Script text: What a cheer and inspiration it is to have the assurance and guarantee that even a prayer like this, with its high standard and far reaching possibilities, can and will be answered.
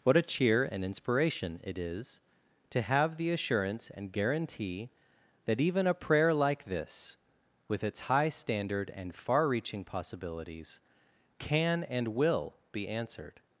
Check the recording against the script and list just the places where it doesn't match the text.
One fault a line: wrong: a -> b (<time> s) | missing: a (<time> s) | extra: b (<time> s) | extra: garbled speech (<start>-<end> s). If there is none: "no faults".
no faults